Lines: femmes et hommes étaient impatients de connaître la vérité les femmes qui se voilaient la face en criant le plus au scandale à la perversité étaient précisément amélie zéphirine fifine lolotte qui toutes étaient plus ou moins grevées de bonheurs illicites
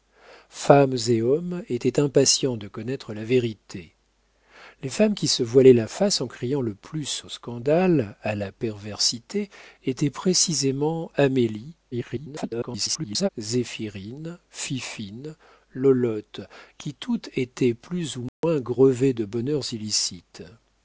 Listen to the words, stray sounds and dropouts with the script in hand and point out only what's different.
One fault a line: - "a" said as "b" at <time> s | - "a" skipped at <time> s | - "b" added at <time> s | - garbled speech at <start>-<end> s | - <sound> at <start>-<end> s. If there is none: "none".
- garbled speech at 11.9-13.3 s
- dropout at 18.3-18.4 s